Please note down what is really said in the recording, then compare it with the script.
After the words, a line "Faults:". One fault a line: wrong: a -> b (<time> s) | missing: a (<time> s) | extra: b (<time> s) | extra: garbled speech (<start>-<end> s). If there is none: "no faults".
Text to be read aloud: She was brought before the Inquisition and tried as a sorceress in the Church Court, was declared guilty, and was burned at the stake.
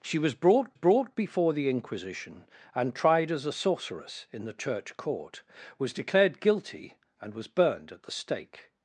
She was brought brought before the Inquisition and tried as a sorceress in the Church Court, was declared guilty, and was burned at the stake.
Faults:
extra: brought (0.7 s)